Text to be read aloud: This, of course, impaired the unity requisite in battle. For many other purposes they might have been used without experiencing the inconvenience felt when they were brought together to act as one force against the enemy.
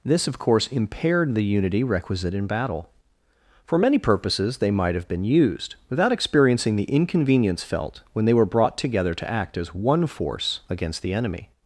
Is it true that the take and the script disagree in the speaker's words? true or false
true